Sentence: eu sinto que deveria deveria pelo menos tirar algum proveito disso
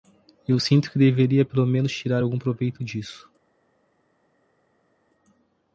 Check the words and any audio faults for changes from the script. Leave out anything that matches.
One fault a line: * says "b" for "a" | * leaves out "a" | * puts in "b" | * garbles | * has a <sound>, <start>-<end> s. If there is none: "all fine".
* leaves out "deveria"